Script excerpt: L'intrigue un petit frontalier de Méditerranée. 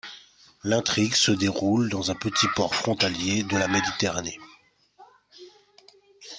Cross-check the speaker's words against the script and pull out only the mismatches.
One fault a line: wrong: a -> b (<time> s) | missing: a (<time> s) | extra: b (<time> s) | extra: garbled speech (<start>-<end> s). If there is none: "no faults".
extra: se déroule dans (1.1 s)
extra: port (2.5 s)
extra: la (3.6 s)